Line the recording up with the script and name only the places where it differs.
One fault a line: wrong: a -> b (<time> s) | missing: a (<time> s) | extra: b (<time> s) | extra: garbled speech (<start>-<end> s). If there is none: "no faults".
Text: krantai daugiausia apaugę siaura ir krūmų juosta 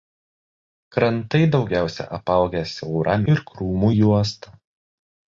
no faults